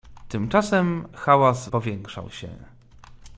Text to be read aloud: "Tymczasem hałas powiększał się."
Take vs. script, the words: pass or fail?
pass